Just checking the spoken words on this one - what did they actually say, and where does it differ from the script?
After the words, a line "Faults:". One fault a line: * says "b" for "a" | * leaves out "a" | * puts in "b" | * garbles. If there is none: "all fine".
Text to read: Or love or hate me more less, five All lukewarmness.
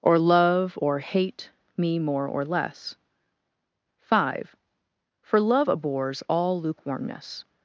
Or love or hate me more or less, five For love abhors all lukewarmness.
Faults:
* puts in "or"
* puts in "For love abhors"